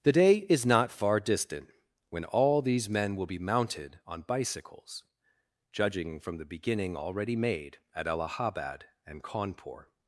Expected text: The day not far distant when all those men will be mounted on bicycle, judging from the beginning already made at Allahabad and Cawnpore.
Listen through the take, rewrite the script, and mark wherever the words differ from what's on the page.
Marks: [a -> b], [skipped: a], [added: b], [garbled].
The day [added: is] not far distant when all [those -> these] men will be mounted on [bicycle, -> bicycles] judging from the beginning already made at Allahabad and Cawnpore.